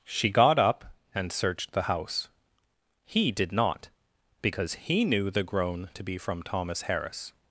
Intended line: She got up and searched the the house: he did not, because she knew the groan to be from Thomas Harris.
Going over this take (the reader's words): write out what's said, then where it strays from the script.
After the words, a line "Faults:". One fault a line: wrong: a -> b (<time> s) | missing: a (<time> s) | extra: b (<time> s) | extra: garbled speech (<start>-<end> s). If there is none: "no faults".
She got up and searched the house: he did not, because he knew the groan to be from Thomas Harris.
Faults:
missing: the (1.8 s)
wrong: she -> he (4.8 s)